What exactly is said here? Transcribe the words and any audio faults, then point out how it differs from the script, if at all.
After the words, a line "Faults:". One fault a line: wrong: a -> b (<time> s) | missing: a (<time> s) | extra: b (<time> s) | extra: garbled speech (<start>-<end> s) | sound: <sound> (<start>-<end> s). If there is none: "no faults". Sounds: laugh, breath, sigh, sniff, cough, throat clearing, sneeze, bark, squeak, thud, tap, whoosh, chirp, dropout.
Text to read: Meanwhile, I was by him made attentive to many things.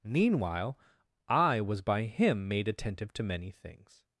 Meanwhile, I was by him made attentive to many things.
Faults:
no faults